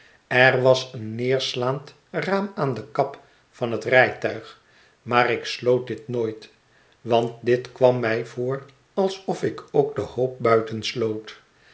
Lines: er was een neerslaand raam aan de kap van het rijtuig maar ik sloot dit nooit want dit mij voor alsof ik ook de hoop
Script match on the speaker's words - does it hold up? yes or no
no